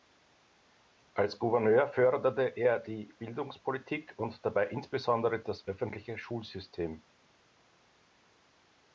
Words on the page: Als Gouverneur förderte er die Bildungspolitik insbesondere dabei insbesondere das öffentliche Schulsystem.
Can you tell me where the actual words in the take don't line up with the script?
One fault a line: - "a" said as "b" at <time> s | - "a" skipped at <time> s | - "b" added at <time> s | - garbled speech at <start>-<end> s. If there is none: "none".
- "insbesondere" said as "und" at 4.2 s